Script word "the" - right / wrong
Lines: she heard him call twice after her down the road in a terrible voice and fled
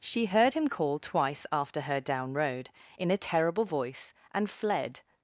wrong